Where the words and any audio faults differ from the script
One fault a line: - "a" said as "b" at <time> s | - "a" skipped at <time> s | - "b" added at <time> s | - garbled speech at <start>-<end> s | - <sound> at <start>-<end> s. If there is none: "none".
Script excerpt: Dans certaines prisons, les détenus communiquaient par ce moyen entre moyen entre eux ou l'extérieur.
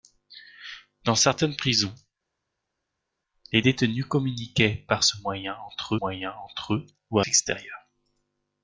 none